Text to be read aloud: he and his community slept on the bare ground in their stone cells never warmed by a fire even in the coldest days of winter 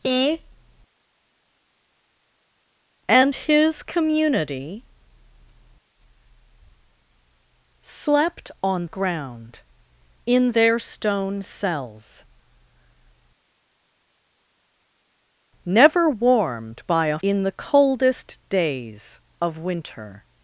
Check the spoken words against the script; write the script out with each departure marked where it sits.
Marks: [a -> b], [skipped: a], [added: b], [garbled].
he and his community slept on [skipped: the bare] ground in their stone cells never warmed by a [skipped: fire even] in the coldest days of winter